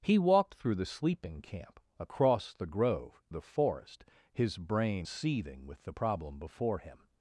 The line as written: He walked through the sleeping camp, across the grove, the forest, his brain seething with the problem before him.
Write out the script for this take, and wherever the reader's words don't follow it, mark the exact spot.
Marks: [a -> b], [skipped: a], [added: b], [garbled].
He walked through the sleeping camp, across the grove, the forest, his brain seething with the problem before him.